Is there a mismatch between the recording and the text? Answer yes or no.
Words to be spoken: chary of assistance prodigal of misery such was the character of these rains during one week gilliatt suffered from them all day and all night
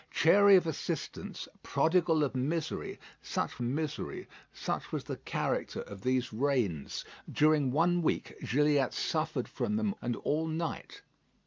yes